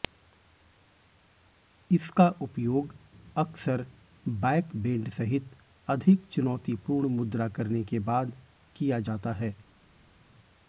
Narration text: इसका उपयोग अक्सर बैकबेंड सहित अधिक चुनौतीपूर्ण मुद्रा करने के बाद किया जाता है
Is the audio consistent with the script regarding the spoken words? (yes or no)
yes